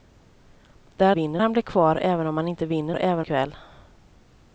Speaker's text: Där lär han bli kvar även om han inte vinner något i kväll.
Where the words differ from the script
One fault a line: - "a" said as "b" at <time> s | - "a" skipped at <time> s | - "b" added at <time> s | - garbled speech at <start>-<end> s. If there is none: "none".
- "lär" said as "vinner" at 1.1 s
- "något" said as "även" at 2.9 s